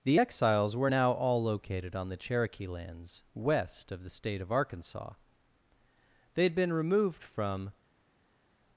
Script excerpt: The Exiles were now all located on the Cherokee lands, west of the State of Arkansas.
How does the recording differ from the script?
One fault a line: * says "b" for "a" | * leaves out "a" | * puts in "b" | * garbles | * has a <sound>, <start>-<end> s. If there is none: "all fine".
* puts in "They had been removed from"